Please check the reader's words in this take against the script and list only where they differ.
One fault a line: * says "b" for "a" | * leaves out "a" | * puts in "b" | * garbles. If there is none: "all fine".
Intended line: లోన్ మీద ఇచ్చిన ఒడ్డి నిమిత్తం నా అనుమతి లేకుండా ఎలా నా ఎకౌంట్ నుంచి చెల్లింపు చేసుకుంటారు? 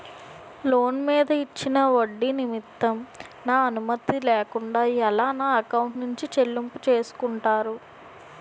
all fine